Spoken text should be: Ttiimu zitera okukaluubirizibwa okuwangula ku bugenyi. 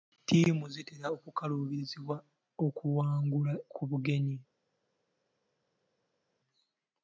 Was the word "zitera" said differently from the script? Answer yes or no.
no